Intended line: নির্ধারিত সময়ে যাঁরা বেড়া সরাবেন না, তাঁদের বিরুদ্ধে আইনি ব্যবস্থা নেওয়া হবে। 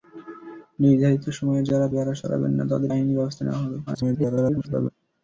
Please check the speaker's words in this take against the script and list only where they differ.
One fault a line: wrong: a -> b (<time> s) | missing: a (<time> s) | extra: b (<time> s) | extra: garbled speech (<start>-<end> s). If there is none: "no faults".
missing: বিরুদ্ধে (2.9 s)
extra: garbled speech (3.9-4.9 s)